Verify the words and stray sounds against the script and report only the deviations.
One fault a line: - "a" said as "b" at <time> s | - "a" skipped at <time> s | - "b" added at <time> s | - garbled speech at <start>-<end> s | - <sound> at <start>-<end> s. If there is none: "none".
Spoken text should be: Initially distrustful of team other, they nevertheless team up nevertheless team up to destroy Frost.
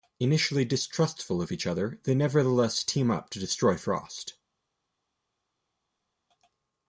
- "team" said as "each" at 1.5 s
- "nevertheless team up" skipped at 3.3 s